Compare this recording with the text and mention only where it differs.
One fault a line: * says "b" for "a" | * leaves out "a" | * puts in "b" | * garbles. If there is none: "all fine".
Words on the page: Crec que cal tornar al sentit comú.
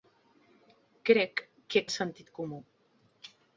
* leaves out "cal tornar"